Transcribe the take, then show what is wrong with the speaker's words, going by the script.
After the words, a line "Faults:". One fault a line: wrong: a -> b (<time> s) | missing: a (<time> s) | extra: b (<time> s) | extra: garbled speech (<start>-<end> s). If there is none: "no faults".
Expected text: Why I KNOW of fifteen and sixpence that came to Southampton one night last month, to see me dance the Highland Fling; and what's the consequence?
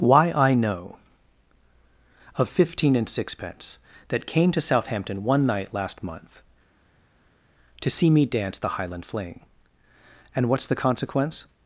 Why I KNOW of fifteen and sixpence that came to Southampton one night last month, to see me dance the Highland Fling; and what's the consequence?
Faults:
no faults